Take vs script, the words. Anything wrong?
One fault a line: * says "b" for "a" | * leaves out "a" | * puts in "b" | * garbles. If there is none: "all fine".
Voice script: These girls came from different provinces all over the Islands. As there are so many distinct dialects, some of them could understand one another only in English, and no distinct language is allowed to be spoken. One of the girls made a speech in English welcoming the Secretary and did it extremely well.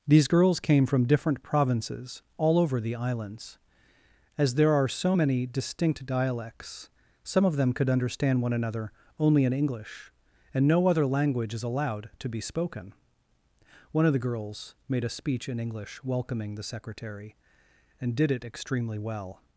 * says "other" for "distinct"